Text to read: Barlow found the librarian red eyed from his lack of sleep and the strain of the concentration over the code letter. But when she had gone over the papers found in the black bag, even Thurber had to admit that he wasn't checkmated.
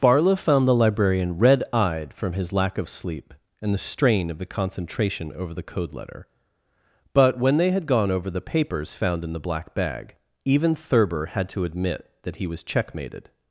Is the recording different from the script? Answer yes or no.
yes